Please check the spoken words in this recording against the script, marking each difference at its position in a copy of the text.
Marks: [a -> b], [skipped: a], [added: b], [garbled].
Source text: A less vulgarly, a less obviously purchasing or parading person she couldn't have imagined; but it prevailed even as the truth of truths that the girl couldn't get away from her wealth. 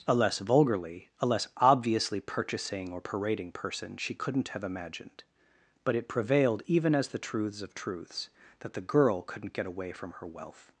A less vulgarly, a less obviously purchasing or parading person she couldn't have imagined; but it prevailed even as the [truth -> truths] of truths that the girl couldn't get away from her wealth.